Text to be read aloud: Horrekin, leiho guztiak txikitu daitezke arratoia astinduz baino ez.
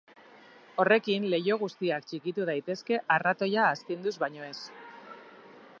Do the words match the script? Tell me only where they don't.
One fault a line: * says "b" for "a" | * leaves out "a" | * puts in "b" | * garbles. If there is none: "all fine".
all fine